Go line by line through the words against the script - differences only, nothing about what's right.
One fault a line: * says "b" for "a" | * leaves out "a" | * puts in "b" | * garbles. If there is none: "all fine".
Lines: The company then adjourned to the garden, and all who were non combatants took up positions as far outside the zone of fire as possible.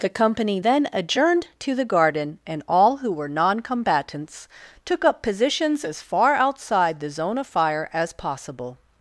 all fine